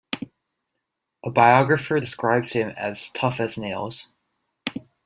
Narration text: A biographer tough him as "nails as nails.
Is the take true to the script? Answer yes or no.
no